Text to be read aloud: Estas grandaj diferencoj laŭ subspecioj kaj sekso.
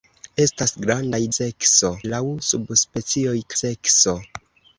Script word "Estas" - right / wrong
right